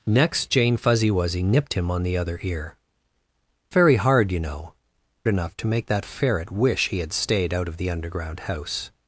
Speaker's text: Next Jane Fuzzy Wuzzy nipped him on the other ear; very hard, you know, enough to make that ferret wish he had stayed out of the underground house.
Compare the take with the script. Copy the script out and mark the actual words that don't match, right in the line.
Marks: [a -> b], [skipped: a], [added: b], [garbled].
Next Jane Fuzzy Wuzzy nipped him on the other ear; very hard, you know, enough to make that ferret wish he had stayed out of the underground house.